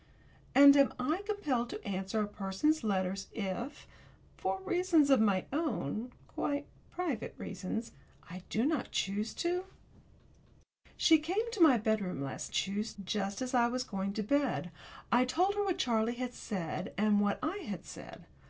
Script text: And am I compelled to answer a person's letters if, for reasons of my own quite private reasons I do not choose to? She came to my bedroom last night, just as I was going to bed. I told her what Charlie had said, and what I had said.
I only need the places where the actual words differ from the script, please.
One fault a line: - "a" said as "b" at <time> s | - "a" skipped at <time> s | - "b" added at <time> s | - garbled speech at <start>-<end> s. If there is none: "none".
- "night" said as "choose" at 12.5 s